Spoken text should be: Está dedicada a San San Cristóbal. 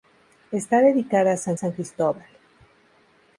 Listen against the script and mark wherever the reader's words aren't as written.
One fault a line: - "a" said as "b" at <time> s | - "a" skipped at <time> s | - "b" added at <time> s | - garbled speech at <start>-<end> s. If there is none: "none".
none